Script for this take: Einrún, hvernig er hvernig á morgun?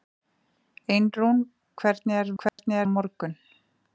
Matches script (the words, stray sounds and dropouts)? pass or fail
fail